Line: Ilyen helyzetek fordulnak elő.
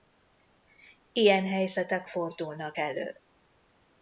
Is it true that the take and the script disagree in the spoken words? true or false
false